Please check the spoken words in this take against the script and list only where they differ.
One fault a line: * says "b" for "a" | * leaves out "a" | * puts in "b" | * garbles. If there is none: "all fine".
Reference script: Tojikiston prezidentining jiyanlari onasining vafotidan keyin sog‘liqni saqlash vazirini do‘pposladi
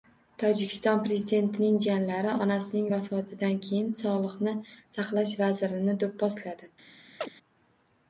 all fine